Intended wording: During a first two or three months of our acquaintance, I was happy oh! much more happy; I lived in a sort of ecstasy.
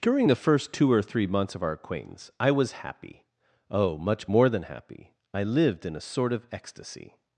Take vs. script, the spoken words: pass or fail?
fail